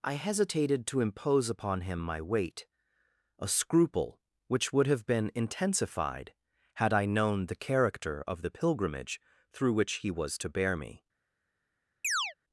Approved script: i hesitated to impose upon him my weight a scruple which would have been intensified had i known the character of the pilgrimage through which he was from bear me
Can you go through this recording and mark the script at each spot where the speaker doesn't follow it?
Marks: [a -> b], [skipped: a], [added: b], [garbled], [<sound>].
i hesitated to impose upon him my weight a scruple which would have been intensified had i known the character of the pilgrimage through which he was [from -> to] bear me [chirp]